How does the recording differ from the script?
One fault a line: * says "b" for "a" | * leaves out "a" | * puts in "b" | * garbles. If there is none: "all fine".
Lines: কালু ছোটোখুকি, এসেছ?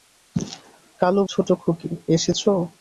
all fine